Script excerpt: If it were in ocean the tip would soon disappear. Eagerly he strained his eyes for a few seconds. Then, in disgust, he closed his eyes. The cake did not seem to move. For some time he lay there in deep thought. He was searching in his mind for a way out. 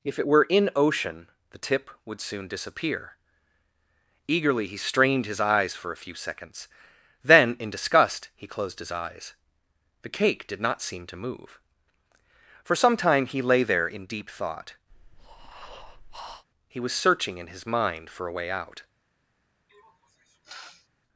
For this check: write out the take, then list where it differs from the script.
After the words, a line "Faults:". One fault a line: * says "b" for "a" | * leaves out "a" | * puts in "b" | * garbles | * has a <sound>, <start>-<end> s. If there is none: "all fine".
If it were in ocean the tip would soon disappear. Eagerly he strained his eyes for a few seconds. Then, in disgust, he closed his eyes. The cake did not seem to move. For some time he lay there in deep thought. He was searching in his mind for a way out.
Faults:
* has a breath, 14.9-16.5 s
* has a sniff, 19.7-20.9 s